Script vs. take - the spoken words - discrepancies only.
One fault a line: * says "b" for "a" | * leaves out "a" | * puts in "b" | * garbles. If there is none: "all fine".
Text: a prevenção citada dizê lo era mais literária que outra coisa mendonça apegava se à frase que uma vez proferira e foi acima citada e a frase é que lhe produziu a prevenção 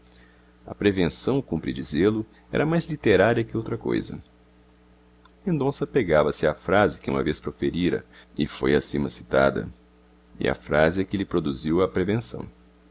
* says "cumpre" for "citada"